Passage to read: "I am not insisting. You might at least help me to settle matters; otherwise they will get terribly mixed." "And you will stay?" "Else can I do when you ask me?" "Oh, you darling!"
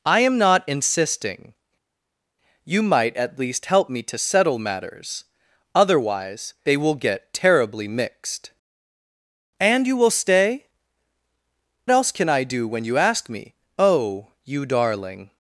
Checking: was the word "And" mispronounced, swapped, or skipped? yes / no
no